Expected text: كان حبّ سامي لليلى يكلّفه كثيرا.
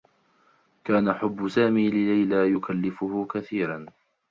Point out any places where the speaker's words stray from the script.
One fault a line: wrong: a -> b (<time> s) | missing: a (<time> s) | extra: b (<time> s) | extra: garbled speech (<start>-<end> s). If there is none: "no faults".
no faults